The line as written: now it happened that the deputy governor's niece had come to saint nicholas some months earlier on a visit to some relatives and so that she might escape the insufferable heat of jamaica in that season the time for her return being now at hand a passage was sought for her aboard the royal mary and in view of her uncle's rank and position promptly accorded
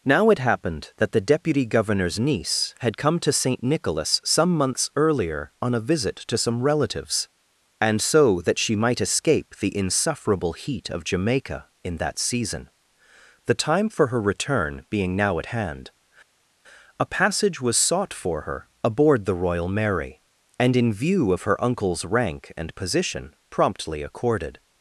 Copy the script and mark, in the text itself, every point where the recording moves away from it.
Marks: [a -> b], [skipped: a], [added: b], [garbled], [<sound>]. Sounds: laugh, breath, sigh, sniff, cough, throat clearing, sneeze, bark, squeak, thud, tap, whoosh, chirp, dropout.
now it happened that the deputy governor's niece had come to saint nicholas some months earlier on a visit to some relatives and so that she might escape the insufferable heat of jamaica in that season the time for her return being now at hand a passage was sought for her aboard the royal mary and in view of her uncle's rank and position promptly accorded